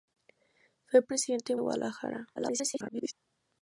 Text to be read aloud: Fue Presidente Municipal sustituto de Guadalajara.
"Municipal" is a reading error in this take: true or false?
true